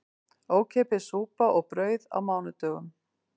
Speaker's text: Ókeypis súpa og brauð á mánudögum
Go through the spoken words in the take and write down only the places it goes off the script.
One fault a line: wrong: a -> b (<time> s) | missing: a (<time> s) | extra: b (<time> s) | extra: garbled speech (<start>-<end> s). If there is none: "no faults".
no faults